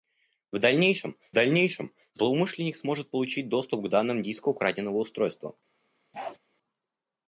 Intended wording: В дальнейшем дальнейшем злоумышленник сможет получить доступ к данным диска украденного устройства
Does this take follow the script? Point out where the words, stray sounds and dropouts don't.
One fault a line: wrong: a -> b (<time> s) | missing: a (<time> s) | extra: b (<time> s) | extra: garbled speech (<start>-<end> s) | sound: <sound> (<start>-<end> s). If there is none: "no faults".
sound: bark (6.1-6.4 s)